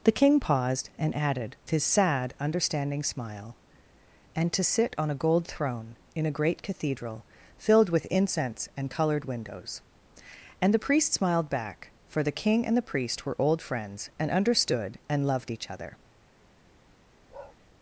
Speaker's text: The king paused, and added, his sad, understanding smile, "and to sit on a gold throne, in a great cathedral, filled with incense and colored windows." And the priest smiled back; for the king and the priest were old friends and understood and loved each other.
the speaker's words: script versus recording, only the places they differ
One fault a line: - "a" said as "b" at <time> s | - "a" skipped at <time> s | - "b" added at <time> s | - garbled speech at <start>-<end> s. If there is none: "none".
none